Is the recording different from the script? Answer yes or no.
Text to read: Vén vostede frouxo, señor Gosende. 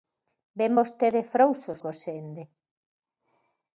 yes